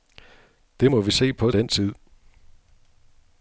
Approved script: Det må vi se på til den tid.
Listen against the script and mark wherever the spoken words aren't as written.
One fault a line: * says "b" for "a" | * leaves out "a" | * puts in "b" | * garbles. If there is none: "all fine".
* leaves out "til"